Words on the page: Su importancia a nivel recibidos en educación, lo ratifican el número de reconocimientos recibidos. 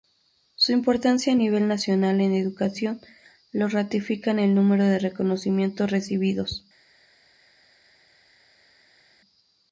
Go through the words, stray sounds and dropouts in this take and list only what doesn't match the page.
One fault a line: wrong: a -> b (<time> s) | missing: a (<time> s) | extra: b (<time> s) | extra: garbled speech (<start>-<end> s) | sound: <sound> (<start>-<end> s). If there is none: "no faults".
wrong: recibidos -> nacional (1.7 s)